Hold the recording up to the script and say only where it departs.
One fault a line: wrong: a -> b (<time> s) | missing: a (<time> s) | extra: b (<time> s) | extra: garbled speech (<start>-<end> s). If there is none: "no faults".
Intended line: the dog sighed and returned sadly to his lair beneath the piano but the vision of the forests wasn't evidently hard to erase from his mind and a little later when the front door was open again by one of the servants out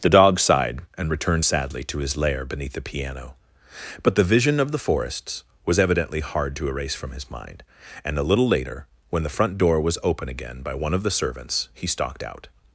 wrong: wasn't -> was (5.6 s)
extra: he stalked (11.7 s)